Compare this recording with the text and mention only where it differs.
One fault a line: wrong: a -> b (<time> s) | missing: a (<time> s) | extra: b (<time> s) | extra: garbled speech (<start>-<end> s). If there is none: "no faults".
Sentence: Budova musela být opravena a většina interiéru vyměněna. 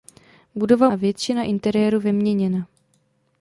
missing: musela být opravena (0.9 s)